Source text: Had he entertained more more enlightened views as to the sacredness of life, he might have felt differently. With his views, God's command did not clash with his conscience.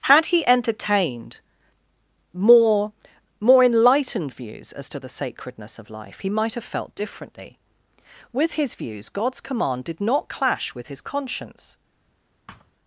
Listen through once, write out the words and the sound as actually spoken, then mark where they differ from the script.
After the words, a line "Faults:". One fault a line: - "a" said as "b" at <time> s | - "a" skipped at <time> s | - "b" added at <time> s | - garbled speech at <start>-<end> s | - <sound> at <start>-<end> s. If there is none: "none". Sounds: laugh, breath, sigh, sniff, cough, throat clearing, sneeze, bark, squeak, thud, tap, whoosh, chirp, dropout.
Had he entertained more more enlightened views as to the sacredness of life, he might have felt differently. With his views, God's command did not clash with his conscience.
Faults:
- thud at 12.5-12.7 s